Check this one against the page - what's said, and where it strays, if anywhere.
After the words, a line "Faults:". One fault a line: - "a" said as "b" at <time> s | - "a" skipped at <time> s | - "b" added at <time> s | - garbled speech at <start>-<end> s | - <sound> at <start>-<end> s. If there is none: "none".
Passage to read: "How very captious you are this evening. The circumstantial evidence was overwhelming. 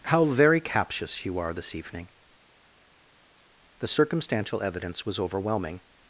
"How very captious you are this evening. The circumstantial evidence was overwhelming.
Faults:
none